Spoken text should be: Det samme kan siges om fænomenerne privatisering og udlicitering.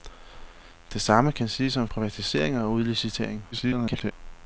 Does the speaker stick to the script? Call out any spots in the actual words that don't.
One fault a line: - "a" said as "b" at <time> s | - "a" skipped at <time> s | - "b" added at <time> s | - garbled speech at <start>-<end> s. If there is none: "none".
- "fænomenerne" skipped at 1.9 s
- garbled speech at 3.5-4.1 s